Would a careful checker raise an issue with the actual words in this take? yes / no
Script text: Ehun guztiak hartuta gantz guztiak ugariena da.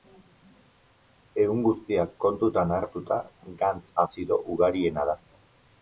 yes